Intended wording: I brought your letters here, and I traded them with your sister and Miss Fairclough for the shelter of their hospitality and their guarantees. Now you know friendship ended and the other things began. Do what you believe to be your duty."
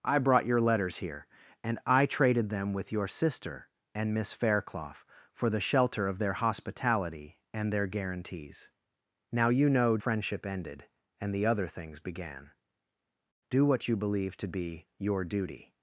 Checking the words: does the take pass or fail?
pass